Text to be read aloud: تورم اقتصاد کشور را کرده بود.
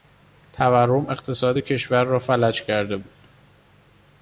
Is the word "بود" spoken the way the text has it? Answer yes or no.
yes